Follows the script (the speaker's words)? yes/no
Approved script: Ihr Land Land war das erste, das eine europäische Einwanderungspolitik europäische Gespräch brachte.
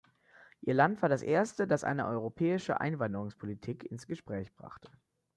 no